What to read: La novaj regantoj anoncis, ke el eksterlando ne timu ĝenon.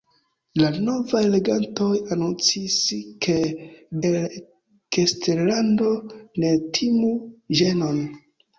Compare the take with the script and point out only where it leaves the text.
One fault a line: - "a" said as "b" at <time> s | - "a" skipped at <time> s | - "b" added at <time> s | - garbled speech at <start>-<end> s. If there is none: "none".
none